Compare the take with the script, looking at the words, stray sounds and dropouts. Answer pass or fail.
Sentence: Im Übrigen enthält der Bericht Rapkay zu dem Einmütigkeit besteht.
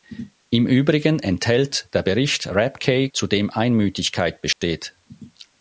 fail